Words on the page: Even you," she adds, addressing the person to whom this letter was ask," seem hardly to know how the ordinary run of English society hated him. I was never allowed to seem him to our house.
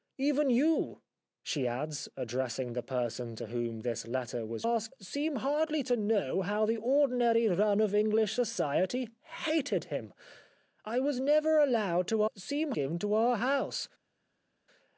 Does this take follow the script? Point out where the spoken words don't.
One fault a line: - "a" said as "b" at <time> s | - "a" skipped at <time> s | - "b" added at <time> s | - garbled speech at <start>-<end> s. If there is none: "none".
none